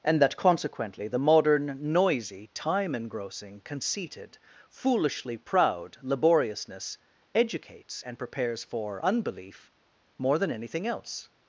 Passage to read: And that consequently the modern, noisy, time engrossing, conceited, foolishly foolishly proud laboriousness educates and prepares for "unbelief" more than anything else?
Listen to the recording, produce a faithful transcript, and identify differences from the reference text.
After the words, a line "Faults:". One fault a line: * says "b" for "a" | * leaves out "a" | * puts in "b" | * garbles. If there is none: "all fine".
And that consequently the modern, noisy, time engrossing, conceited, foolishly proud laboriousness educates and prepares for "unbelief" more than anything else?
Faults:
* leaves out "foolishly"